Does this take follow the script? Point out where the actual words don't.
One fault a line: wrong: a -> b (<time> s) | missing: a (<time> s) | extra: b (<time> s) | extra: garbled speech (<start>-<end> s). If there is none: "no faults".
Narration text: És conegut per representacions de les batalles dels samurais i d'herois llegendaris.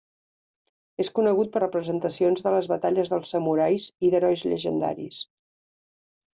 no faults